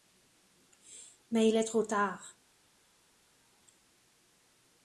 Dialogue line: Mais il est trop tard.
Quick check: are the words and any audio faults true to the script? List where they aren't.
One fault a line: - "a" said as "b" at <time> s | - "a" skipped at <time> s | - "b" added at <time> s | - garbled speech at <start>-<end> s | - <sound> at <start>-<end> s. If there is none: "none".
none